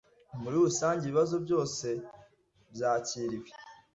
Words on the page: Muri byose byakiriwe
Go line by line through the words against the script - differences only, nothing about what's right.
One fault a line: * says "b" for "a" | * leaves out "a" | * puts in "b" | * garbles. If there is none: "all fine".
* puts in "rusange ibibazo"